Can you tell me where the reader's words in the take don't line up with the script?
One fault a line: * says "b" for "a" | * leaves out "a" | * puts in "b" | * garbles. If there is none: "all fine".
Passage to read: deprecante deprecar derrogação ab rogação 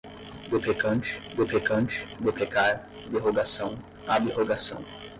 * puts in "deprecante"